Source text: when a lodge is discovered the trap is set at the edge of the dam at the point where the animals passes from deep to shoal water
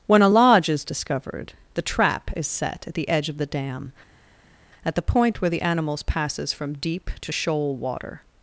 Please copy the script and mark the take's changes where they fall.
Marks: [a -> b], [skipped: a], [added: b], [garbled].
when a lodge is discovered the trap is set at the edge of the dam at the point where the animals passes from deep to shoal water